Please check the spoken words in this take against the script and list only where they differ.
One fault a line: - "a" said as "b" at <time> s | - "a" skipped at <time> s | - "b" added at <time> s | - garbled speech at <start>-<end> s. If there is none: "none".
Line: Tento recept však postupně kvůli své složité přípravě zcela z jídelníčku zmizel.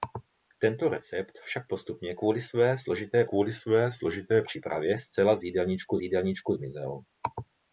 - "kvůli své složité" added at 3.2 s
- "jídelníčku" added at 6.0 s